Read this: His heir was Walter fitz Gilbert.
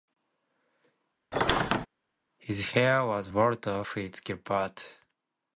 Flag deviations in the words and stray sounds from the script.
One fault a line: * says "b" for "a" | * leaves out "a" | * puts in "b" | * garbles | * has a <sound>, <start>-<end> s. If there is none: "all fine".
* has a squeak, 1.3-1.9 s